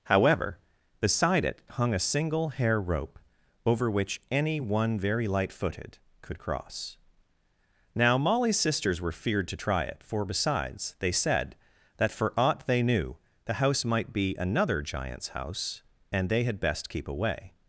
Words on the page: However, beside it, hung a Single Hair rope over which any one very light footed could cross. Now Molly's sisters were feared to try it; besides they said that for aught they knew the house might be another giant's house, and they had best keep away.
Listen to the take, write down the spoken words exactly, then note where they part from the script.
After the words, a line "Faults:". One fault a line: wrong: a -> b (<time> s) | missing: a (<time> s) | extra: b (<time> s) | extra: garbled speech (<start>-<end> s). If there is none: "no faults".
However, beside it, hung a Single Hair rope over which any one very light footed could cross. Now Molly's sisters were feared to try it; for besides they said that for aught they knew the house might be another giant's house, and they had best keep away.
Faults:
extra: for (10.0 s)